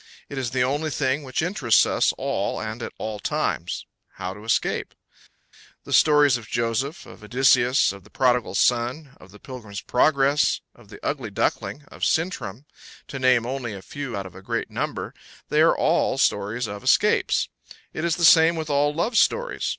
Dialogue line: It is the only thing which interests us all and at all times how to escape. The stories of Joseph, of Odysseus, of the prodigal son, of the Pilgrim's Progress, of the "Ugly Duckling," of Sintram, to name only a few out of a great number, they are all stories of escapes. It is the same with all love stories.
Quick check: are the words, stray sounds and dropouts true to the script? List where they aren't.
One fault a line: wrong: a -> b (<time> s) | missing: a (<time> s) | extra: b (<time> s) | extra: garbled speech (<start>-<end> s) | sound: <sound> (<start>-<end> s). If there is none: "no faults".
no faults